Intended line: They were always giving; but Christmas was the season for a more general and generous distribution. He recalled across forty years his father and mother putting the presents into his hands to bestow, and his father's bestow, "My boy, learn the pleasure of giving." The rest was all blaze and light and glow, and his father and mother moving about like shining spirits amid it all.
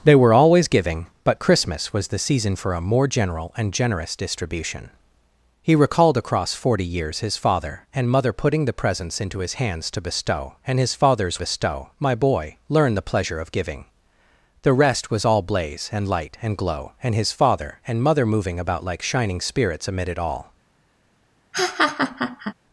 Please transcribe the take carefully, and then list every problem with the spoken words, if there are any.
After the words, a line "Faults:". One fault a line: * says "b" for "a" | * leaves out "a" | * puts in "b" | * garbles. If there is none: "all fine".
They were always giving; but Christmas was the season for a more general and generous distribution. He recalled across forty years his father and mother putting the presents into his hands to bestow, and his father's bestow, "My boy, learn the pleasure of giving." The rest was all blaze and light and glow, and his father and mother moving about like shining spirits amid it all.
Faults:
all fine